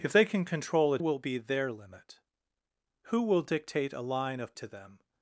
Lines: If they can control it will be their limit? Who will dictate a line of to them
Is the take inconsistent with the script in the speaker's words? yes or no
no